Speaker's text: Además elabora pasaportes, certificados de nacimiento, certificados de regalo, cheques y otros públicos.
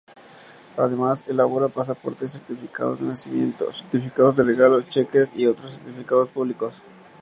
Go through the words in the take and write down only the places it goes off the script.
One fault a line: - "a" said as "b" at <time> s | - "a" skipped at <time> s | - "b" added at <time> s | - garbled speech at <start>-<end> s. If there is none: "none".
- "certificados" added at 5.7 s